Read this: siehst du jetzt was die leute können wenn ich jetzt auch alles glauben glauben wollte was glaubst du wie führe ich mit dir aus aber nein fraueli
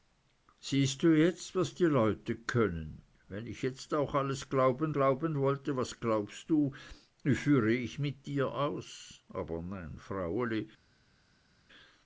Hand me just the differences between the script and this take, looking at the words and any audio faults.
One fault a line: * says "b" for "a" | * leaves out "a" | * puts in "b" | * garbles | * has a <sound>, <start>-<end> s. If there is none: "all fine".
all fine